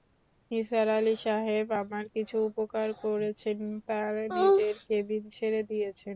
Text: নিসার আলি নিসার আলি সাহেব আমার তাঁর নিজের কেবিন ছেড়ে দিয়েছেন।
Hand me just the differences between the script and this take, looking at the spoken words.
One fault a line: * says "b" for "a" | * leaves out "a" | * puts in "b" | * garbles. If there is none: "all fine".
* says "সাহেব আমার কিছু উপকার করেছেন" for "নিসার আলি সাহেব আমার"